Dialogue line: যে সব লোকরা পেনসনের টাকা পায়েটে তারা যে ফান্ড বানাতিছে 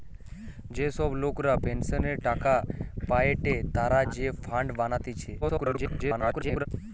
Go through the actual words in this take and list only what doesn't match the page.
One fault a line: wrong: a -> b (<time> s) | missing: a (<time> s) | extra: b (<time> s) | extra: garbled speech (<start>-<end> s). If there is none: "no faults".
extra: garbled speech (5.4-6.7 s)